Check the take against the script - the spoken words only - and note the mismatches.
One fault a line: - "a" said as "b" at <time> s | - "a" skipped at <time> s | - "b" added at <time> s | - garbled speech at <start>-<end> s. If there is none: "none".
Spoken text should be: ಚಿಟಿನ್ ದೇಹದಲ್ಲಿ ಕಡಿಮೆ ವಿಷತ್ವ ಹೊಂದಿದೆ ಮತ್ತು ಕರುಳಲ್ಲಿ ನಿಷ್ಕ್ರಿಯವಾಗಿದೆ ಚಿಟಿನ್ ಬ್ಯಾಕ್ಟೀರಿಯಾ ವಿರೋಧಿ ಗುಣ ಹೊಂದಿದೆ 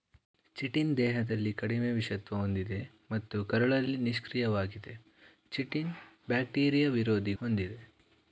- "ಗುಣ" skipped at 7.3 s